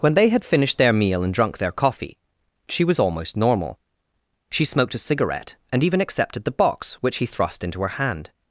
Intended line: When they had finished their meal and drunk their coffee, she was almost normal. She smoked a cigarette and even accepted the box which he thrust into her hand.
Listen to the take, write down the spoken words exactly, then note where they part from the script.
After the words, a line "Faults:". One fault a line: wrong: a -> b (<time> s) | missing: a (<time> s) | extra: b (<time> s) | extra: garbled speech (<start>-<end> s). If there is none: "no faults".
When they had finished their meal and drunk their coffee, she was almost normal. She smoked a cigarette and even accepted the box which he thrust into her hand.
Faults:
no faults